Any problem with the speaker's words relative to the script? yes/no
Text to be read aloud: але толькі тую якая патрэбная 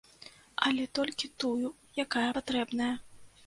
no